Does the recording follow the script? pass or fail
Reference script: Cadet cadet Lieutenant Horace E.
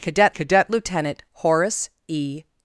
pass